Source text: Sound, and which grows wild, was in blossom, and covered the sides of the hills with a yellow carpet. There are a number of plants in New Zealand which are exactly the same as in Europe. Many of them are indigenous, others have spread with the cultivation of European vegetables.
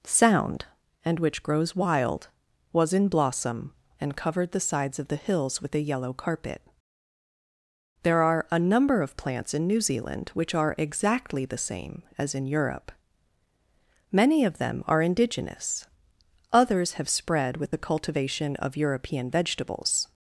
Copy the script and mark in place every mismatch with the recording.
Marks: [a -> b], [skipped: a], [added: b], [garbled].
Sound, and which grows wild, was in blossom, and covered the sides of the hills with a yellow carpet. There are a number of plants in New Zealand which are exactly the same as in Europe. Many of them are indigenous, others have spread with the cultivation of European vegetables.